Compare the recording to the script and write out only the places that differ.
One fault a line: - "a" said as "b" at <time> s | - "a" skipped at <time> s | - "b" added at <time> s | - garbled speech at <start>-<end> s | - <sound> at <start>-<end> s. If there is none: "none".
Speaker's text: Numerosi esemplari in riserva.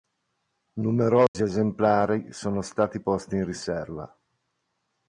- dropout at 1.3-1.3 s
- "sono stati posti" added at 2.3 s